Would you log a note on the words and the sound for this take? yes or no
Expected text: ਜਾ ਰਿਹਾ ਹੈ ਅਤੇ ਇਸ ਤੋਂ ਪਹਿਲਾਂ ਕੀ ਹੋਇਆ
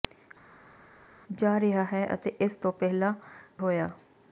yes